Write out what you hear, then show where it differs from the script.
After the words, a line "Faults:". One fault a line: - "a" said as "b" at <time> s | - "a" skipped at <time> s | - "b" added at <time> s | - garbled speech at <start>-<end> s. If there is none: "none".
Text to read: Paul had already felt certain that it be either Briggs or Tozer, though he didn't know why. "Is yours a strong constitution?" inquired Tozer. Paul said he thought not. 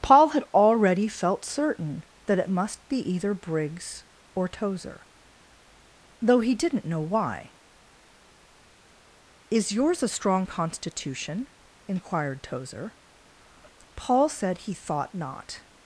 Paul had already felt certain that it must be either Briggs or Tozer, though he didn't know why. "Is yours a strong constitution?" inquired Tozer. Paul said he thought not.
Faults:
- "must" added at 2.5 s